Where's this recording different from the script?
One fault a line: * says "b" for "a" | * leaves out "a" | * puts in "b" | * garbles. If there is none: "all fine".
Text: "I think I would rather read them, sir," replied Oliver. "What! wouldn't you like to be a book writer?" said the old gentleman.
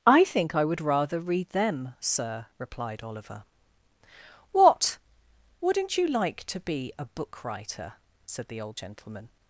all fine